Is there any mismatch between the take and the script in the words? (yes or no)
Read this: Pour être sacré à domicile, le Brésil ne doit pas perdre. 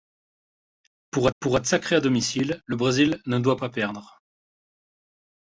yes